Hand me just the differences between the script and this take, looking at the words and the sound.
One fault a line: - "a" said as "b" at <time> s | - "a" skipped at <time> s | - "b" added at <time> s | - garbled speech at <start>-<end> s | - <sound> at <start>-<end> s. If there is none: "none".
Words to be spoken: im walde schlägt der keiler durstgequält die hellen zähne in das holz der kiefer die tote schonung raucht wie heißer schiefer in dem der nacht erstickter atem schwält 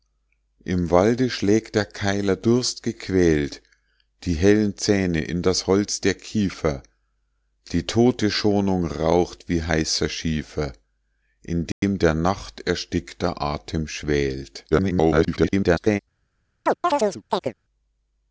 - dropout at 11.7-11.8 s
- garbled speech at 14.7-16.0 s
- chirp at 16.7-17.5 s